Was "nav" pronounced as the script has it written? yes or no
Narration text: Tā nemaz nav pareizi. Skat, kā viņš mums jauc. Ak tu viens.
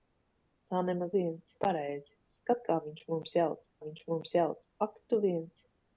no